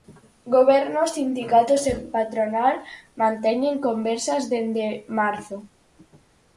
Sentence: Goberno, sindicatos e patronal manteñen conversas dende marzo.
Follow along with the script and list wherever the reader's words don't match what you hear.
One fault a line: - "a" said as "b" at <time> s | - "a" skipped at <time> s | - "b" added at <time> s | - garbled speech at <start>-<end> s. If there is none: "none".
none